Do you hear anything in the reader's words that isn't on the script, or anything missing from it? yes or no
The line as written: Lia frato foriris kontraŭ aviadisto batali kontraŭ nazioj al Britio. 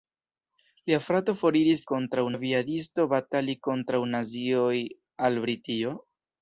no